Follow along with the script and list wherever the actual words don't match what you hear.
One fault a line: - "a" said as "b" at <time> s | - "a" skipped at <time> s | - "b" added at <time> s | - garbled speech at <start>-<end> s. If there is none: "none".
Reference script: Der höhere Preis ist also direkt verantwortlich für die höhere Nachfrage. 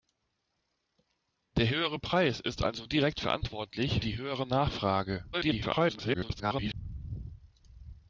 - "für" skipped at 4.0 s
- garbled speech at 5.3-6.7 s